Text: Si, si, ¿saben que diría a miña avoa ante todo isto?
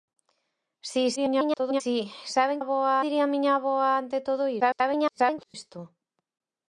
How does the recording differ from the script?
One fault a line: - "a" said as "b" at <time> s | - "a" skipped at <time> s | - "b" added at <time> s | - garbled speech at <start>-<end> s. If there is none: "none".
- garbled speech at 1.2-1.8 s
- "que" said as "avoa" at 2.6 s
- garbled speech at 4.6-5.5 s